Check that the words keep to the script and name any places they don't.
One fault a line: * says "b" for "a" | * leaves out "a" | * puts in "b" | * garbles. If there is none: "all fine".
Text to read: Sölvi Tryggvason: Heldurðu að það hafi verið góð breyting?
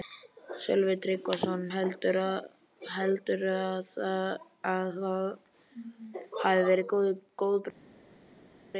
all fine